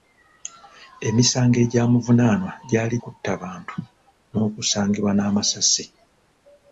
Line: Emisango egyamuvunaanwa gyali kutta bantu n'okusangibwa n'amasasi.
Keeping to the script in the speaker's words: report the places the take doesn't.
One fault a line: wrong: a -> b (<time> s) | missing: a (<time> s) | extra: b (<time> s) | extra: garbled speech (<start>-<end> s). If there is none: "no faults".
no faults